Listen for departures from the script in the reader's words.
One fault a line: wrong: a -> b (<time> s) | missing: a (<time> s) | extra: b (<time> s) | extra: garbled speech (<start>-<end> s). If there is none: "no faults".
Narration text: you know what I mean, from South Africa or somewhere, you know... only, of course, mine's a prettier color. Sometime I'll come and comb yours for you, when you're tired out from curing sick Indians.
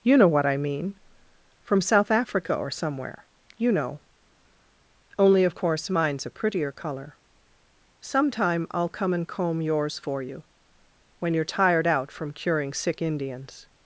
no faults